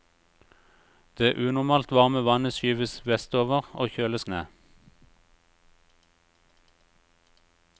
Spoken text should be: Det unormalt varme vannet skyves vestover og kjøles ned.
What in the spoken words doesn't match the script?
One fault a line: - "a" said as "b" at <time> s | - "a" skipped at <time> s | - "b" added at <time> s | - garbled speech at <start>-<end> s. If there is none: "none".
none